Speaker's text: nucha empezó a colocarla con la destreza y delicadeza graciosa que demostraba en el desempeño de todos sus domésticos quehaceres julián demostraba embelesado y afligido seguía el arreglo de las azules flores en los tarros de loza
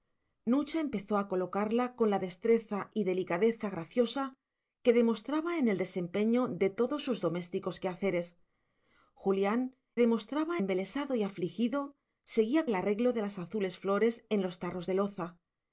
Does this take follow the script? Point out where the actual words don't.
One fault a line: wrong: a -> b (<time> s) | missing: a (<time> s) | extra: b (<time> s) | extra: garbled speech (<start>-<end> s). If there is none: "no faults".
no faults